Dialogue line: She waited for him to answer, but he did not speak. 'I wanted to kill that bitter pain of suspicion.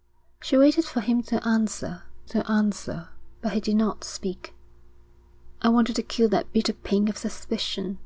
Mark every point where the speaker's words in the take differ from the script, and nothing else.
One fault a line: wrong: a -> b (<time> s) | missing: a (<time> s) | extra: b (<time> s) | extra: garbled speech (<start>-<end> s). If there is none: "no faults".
extra: to answer (2.3 s)